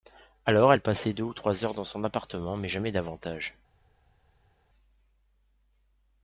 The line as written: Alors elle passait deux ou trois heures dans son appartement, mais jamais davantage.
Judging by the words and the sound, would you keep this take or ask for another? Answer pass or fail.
pass